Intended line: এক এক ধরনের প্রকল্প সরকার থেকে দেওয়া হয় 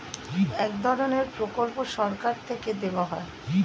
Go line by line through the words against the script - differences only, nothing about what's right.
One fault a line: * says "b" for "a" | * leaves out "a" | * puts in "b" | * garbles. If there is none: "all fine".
* leaves out "এক"